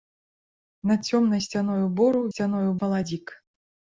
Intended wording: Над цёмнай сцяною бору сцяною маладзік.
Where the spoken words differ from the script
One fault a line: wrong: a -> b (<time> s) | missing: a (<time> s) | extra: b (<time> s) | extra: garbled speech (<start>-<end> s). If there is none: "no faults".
no faults